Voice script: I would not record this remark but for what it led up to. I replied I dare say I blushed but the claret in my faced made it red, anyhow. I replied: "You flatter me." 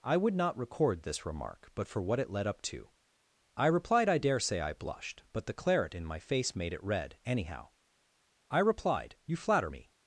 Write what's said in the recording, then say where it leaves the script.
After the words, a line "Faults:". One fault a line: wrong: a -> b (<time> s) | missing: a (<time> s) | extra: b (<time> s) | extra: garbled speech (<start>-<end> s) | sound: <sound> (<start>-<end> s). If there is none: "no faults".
I would not record this remark but for what it led up to. I replied I dare say I blushed but the claret in my face made it red, anyhow. I replied: "You flatter me."
Faults:
wrong: faced -> face (6.2 s)